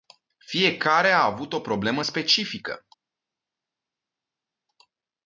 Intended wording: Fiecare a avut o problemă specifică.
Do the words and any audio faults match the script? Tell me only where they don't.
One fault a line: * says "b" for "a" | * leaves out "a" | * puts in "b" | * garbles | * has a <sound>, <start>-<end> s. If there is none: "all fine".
all fine